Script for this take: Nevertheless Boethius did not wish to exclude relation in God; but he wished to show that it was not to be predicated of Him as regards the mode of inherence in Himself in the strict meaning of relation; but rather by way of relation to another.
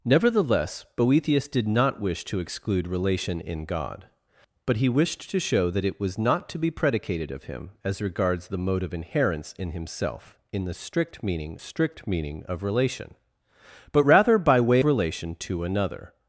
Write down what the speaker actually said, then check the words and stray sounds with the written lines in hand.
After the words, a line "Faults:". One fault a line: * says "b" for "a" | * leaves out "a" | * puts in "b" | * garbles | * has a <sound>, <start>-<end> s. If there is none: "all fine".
Nevertheless Boethius did not wish to exclude relation in God; but he wished to show that it was not to be predicated of Him as regards the mode of inherence in Himself in the strict meaning strict meaning of relation; but rather by way relation to another.
Faults:
* puts in "strict meaning"
* leaves out "of"